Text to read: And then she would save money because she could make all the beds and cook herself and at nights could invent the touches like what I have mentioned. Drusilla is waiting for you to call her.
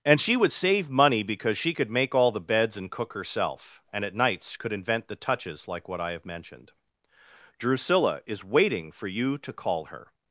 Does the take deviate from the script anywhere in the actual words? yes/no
yes